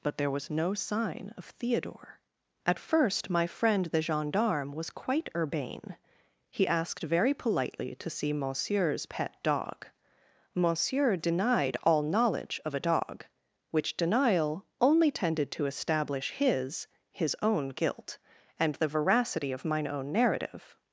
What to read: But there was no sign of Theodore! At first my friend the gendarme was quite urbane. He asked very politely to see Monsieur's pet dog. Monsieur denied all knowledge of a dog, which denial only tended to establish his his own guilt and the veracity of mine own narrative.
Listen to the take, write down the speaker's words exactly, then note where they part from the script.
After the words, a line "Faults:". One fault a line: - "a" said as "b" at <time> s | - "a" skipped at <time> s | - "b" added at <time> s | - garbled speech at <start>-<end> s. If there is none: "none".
But there was no sign of Theodore! At first my friend the gendarme was quite urbane. He asked very politely to see Monsieur's pet dog. Monsieur denied all knowledge of a dog, which denial only tended to establish his his own guilt and the veracity of mine own narrative.
Faults:
none